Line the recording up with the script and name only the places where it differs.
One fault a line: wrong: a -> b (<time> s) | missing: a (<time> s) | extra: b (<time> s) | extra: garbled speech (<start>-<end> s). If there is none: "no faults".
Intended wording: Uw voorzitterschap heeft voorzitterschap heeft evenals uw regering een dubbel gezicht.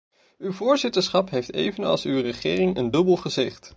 missing: voorzitterschap heeft (1.5 s)